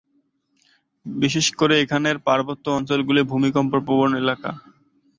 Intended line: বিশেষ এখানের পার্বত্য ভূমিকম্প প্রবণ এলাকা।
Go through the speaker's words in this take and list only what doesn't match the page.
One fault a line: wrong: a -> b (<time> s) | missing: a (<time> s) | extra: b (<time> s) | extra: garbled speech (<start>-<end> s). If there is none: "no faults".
extra: করে (1.6 s)
extra: অঞ্চলগুলি (2.8 s)